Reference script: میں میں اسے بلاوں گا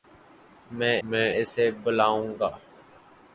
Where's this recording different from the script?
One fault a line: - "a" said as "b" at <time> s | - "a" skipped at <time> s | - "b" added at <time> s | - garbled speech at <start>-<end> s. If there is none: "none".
none